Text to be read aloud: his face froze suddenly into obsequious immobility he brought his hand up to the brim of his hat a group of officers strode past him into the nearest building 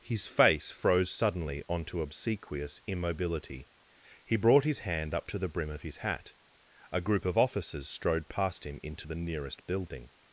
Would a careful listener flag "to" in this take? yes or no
no